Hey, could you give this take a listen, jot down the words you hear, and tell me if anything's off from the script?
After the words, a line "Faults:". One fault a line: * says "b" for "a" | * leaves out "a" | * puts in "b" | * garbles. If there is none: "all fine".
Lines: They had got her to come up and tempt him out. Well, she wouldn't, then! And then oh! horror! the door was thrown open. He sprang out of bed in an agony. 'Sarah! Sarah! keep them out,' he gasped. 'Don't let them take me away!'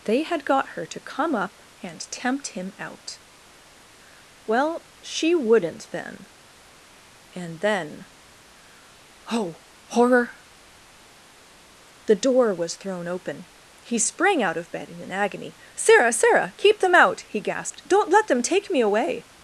They had got her to come up and tempt him out. Well, she wouldn't, then! And then oh! horror! the door was thrown open. He sprang out of bed in an agony. 'Sarah! Sarah! keep them out,' he gasped. 'Don't let them take me away!'
Faults:
all fine